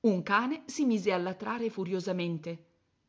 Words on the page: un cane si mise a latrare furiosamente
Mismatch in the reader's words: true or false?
false